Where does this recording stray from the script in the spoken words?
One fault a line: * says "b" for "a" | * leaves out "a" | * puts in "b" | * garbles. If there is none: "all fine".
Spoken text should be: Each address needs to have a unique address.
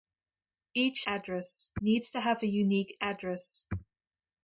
all fine